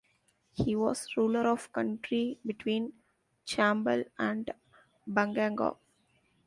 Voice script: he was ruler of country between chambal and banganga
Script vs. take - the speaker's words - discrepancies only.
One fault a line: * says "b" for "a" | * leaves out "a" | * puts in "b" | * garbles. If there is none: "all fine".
all fine